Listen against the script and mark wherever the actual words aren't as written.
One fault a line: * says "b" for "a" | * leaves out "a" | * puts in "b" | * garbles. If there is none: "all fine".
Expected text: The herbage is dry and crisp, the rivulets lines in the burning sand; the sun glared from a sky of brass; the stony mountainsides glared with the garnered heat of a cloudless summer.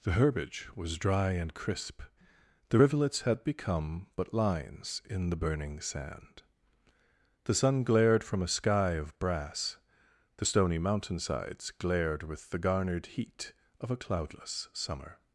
* says "was" for "is"
* puts in "had become but"